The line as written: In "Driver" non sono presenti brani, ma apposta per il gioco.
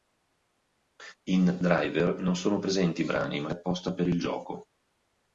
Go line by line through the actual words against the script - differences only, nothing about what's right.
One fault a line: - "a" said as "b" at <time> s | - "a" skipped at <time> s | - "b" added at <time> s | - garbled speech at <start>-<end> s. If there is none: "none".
none